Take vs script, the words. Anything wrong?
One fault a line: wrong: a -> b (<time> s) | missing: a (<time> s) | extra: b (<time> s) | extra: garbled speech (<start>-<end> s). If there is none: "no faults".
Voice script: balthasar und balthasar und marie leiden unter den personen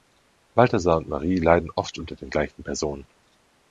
missing: balthasar und (1.1 s)
extra: oft (1.8 s)
extra: gleichen (2.3 s)